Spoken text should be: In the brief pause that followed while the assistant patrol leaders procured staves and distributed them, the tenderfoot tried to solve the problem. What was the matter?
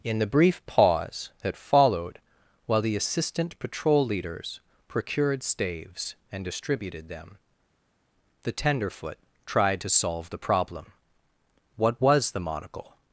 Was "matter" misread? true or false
true